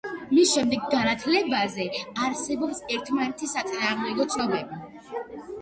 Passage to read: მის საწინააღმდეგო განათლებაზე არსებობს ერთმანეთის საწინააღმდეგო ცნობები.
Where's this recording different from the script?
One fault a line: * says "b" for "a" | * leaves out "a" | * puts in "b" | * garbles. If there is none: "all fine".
* says "შემდეგ" for "საწინააღმდეგო"